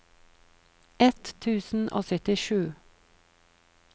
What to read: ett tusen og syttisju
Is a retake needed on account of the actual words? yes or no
no